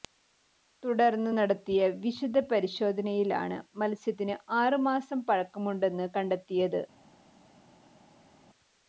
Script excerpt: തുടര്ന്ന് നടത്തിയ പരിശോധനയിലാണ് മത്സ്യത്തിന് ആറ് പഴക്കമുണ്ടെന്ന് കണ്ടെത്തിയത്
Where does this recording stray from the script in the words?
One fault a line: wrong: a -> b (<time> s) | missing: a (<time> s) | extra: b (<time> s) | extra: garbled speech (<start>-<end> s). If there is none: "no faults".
extra: വിശദ (2.0 s)
extra: മാസം (4.9 s)